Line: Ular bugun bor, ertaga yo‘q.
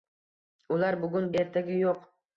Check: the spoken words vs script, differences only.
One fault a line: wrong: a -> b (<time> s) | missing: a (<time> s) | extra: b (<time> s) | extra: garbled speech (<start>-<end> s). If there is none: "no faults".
missing: bor (1.3 s)